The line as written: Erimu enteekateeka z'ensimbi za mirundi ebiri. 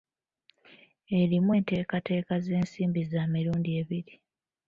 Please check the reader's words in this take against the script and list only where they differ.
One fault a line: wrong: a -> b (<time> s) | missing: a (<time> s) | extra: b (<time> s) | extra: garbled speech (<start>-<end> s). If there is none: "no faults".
no faults